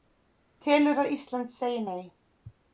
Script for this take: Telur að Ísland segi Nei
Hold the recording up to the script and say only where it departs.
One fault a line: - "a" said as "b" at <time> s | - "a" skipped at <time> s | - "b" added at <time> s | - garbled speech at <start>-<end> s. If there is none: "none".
none